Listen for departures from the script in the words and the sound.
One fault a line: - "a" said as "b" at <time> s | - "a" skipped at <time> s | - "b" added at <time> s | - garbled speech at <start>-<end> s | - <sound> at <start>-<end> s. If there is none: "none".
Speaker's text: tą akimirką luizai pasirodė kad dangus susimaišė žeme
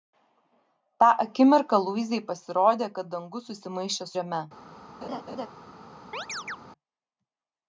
- laugh at 5.0-5.5 s
- chirp at 6.1-6.6 s